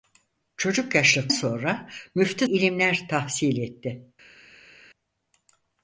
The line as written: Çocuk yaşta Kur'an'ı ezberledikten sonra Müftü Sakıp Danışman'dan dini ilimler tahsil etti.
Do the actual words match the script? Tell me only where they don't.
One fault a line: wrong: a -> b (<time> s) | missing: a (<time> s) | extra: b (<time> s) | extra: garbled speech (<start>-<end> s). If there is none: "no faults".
missing: Kur'an'ı ezberledikten (1.3 s)
missing: Sakıp Danışman'dan dini (2.5 s)